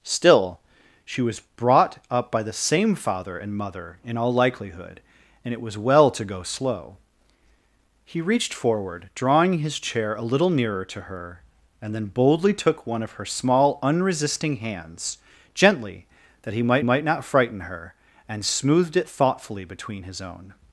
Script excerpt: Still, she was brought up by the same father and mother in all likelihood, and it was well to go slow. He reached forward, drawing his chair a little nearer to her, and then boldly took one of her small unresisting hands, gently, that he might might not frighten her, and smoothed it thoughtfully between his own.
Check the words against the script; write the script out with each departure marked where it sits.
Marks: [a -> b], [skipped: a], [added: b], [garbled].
Still, she was brought up by the same father and mother in all likelihood, and it was well to go slow. He reached forward, drawing his chair a little nearer to her, and then boldly took one of her small unresisting hands, gently, that he might might not frighten her, and smoothed it thoughtfully between his own.